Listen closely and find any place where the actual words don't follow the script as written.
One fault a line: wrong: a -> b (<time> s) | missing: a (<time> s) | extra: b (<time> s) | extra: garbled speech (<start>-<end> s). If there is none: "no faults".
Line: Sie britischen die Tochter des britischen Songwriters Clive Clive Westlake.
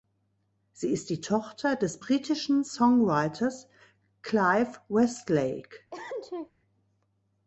wrong: britischen -> ist (0.9 s)
missing: Clive (4.8 s)